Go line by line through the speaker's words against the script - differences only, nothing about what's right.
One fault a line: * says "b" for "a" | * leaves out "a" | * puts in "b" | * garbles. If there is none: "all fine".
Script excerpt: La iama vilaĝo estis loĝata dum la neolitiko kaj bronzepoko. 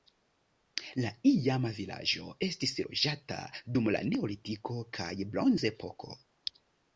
all fine